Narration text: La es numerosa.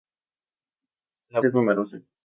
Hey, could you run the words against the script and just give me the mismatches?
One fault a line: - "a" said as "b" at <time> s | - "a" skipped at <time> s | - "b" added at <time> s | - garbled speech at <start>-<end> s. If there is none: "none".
none